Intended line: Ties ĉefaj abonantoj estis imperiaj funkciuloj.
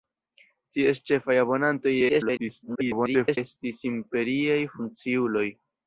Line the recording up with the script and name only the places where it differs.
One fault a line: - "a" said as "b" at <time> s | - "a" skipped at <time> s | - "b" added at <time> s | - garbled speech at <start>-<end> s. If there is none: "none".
- garbled speech at 2.1-3.4 s